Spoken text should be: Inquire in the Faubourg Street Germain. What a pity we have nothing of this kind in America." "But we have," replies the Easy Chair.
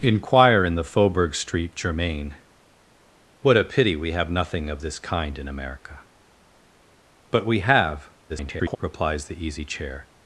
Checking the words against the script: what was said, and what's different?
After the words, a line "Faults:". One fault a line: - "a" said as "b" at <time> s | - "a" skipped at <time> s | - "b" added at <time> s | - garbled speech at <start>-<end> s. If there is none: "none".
Inquire in the Faubourg Street Germain. What a pity we have nothing of this kind in America." "But we have," [garbled] replies the Easy Chair.
Faults:
- garbled speech at 8.3-8.8 s